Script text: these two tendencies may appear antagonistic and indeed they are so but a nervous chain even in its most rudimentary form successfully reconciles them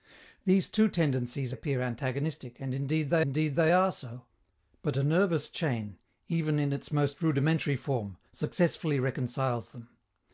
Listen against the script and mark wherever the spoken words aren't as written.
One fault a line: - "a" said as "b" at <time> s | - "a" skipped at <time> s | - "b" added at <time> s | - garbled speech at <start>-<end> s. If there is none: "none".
- "may" skipped at 1.5 s
- "indeed they" added at 3.2 s